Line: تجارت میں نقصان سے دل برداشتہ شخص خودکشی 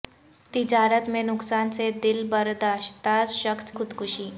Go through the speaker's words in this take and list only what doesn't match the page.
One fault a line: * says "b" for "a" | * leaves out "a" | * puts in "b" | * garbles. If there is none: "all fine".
all fine